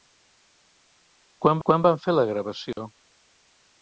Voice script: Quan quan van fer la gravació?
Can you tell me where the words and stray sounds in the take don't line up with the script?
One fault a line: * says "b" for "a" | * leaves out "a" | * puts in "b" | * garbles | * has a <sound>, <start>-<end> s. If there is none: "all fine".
* has a dropout, 2.7-2.8 s